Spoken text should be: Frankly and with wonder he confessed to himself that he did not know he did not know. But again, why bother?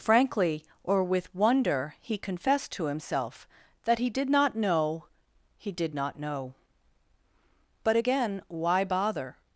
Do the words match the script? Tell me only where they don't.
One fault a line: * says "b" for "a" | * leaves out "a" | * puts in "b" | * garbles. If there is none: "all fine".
* says "or" for "and"